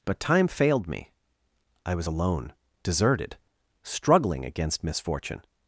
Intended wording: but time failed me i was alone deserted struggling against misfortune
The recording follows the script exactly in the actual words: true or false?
true